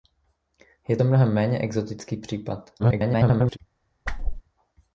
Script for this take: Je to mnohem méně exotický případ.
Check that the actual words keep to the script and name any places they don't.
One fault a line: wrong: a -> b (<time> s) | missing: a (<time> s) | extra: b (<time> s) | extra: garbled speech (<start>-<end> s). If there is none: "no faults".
extra: garbled speech (2.8-3.6 s)